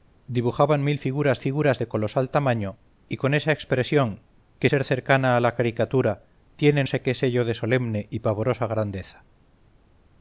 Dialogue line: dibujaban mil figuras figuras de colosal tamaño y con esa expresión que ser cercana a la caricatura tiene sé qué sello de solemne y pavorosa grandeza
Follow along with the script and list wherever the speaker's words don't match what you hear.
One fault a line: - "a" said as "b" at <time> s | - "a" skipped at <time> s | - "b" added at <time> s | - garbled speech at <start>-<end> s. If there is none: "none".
none